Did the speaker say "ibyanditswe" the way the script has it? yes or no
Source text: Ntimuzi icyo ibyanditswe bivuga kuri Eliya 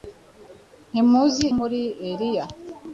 no